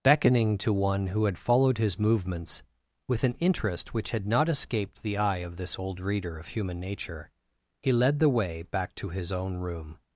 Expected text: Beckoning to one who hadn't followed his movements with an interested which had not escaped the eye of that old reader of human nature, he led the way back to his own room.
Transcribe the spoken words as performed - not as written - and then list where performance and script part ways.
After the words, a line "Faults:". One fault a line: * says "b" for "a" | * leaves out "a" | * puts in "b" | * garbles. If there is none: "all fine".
Beckoning to one who had followed his movements with an interest which had not escaped the eye of this old reader of human nature, he led the way back to his own room.
Faults:
* says "had" for "hadn't"
* says "interest" for "interested"
* says "this" for "that"